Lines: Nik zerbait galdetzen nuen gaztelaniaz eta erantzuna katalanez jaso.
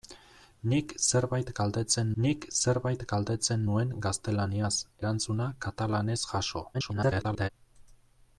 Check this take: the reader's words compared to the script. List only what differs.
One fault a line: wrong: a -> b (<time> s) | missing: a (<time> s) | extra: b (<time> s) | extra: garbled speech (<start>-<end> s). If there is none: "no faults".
extra: nik zerbait galdetzen (2.2 s)
missing: eta (4.7 s)
extra: garbled speech (6.7-7.5 s)